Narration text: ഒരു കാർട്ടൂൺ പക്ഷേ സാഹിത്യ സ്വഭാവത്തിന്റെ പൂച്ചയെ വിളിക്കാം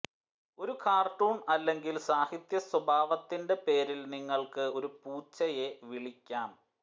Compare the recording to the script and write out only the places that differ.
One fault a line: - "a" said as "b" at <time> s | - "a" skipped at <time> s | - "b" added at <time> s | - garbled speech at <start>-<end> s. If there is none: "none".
- "പക്ഷേ" said as "അല്ലെങ്കിൽ" at 1.5 s
- "പേരിൽ നിങ്ങൾക്ക് ഒരു" added at 3.7 s